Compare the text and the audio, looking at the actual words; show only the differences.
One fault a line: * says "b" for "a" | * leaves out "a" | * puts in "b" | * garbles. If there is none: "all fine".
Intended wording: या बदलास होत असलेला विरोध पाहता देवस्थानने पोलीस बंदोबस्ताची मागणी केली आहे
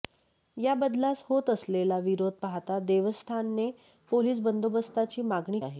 * leaves out "केली"